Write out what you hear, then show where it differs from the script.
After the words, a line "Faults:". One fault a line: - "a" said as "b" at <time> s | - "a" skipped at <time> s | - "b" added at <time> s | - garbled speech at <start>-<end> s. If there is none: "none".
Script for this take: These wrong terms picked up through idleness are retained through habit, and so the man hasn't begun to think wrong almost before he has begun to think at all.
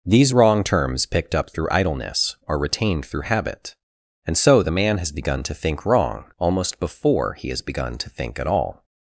These wrong terms picked up through idleness are retained through habit, and so the man has begun to think wrong almost before he has begun to think at all.
Faults:
- "hasn't" said as "has" at 5.0 s